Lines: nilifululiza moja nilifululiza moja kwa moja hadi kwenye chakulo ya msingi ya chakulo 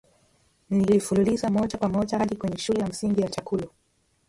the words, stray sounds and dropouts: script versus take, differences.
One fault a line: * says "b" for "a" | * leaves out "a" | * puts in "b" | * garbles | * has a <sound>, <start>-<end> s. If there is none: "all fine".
* leaves out "nilifululiza moja"
* says "shule" for "chakulo"